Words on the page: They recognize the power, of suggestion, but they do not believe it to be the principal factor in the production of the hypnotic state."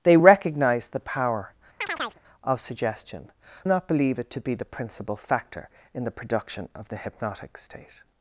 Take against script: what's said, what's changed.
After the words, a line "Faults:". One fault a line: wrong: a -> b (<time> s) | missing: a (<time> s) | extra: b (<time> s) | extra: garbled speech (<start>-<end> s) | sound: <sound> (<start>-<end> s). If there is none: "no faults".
They recognize the power, of suggestion, not believe it to be the principal factor in the production of the hypnotic state."
Faults:
sound: chirp (1.8-2.2 s)
missing: but they do (3.3 s)